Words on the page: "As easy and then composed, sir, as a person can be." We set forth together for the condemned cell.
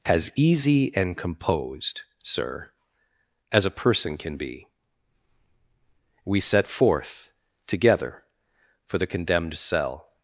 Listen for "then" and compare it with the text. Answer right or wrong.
wrong